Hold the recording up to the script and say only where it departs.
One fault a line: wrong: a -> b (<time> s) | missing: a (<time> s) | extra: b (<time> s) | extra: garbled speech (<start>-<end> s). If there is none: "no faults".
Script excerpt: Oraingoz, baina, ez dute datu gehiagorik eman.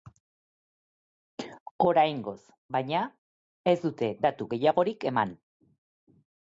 no faults